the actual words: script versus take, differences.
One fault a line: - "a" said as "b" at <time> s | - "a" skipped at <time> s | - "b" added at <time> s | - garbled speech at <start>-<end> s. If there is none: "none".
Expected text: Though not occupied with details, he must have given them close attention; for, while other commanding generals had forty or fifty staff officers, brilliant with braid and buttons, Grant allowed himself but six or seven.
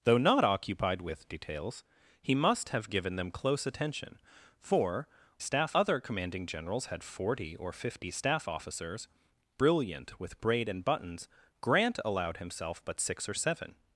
- "while" said as "staff" at 5.4 s